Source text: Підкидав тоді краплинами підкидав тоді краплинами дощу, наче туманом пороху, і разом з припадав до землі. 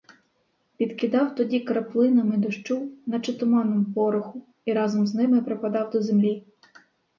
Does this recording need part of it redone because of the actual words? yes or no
yes